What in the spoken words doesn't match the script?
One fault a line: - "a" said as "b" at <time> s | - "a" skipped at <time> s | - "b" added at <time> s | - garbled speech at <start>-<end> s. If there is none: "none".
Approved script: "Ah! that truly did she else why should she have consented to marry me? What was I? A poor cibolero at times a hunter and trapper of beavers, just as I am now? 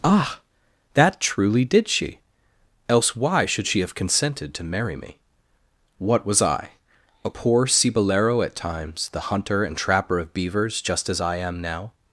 - "a" said as "the" at 9.1 s